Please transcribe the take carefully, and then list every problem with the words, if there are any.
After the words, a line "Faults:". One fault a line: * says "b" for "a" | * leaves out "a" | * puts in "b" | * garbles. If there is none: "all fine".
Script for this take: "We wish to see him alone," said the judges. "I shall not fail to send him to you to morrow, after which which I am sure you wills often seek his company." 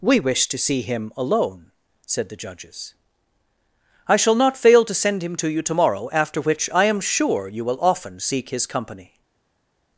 "We wish to see him alone," said the judges. "I shall not fail to send him to you to morrow, after which I am sure you will often seek his company."
Faults:
* leaves out "which"
* says "will" for "wills"